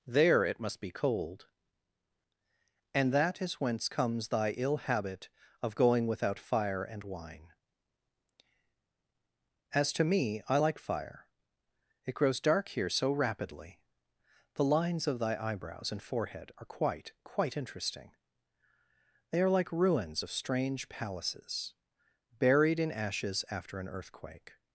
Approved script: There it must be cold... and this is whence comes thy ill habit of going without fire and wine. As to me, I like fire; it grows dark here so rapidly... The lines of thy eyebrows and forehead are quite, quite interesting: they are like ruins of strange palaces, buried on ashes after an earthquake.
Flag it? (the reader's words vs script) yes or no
yes